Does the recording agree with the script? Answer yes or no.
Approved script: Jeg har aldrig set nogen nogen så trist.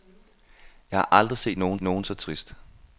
yes